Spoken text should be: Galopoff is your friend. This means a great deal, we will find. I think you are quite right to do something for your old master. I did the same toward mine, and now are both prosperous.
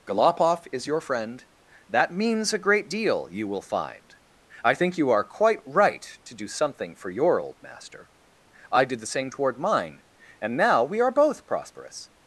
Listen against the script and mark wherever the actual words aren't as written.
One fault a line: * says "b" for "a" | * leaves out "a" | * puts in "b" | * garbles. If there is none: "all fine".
* says "That" for "This"
* says "you" for "we"
* puts in "we"